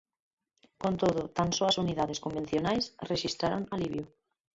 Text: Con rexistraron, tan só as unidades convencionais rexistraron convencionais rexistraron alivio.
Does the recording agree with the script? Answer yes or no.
no